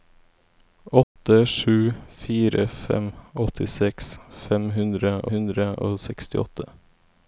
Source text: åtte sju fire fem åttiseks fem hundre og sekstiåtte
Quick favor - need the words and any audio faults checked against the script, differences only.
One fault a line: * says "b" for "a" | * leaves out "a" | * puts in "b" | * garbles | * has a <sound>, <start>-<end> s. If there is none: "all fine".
* has a dropout, 1.0-1.2 s
* puts in "hundre"